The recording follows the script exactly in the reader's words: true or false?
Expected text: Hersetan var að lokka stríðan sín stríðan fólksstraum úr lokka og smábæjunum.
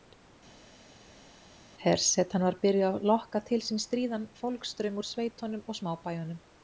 false